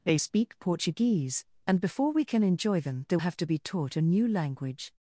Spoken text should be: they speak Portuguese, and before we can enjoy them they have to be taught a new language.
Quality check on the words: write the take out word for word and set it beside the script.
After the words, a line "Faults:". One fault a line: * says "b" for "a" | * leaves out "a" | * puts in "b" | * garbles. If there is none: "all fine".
they speak Portuguese, and before we can enjoy them they have to be taught a new language.
Faults:
all fine